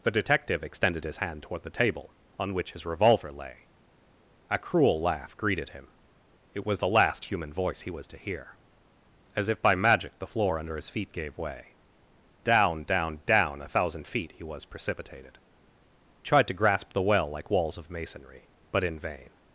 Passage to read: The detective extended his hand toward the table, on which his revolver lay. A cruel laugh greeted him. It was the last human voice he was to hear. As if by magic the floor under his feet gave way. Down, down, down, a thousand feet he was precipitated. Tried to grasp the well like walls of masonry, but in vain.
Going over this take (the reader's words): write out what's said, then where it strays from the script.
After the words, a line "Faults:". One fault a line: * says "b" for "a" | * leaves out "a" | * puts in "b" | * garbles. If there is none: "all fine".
The detective extended his hand toward the table, on which his revolver lay. A cruel laugh greeted him. It was the last human voice he was to hear. As if by magic the floor under his feet gave way. Down, down, down, a thousand feet he was precipitated. Tried to grasp the well like walls of masonry, but in vain.
Faults:
all fine